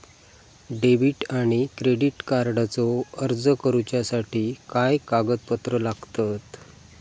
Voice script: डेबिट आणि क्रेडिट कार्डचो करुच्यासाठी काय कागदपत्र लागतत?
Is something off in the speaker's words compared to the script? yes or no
yes